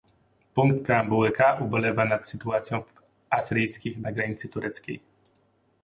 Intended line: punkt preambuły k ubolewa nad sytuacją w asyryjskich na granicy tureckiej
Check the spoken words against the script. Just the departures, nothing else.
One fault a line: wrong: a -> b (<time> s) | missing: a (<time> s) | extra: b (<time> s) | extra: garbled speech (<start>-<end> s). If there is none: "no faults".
no faults